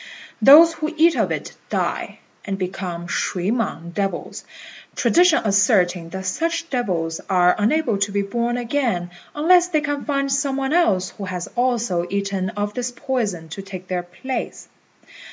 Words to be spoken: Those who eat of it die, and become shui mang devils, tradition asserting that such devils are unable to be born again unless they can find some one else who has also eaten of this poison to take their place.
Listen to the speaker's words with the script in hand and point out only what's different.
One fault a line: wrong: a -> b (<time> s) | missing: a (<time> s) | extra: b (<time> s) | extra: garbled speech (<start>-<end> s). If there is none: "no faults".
no faults